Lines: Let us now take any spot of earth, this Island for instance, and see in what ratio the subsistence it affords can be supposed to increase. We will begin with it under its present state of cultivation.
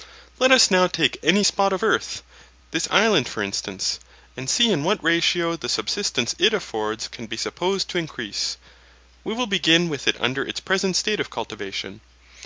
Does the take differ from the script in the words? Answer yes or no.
no